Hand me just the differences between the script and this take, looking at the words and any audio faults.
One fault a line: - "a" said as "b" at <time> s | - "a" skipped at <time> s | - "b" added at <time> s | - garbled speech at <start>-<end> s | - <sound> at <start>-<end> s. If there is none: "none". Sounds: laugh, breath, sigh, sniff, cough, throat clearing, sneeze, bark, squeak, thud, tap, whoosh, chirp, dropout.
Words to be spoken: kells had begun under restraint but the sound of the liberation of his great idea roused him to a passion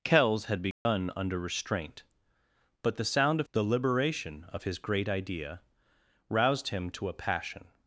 - dropout at 0.7-0.9 s